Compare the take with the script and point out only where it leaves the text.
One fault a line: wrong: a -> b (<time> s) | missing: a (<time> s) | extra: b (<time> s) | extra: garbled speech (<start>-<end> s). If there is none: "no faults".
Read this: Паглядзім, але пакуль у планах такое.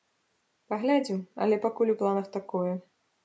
no faults